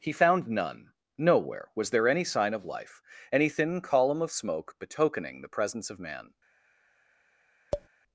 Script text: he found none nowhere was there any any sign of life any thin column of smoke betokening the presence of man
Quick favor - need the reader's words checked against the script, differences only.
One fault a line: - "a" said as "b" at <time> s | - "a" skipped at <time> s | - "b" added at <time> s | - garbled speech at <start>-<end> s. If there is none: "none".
- "any" skipped at 2.2 s